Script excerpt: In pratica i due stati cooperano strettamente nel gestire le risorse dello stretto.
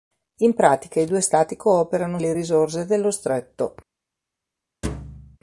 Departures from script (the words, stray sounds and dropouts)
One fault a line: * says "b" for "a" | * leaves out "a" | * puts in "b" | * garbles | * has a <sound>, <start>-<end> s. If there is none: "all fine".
* leaves out "strettamente nel gestire"
* has a thud, 4.8-5.4 s